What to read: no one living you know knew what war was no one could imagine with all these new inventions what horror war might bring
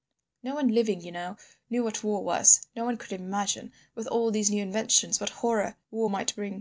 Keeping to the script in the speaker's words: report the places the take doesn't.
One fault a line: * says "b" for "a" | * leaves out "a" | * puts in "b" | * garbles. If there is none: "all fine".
all fine